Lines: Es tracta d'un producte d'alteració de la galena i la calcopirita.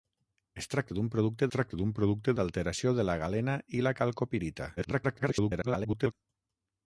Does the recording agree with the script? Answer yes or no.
no